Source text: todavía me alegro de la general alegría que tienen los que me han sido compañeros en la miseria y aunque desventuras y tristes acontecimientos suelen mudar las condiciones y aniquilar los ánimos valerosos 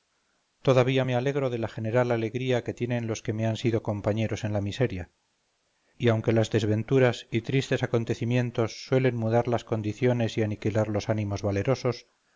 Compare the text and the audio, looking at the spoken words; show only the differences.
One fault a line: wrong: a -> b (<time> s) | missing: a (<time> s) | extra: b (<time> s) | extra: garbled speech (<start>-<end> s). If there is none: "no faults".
extra: las (6.3 s)